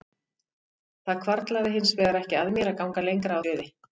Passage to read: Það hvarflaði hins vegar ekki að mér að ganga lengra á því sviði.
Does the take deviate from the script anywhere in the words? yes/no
yes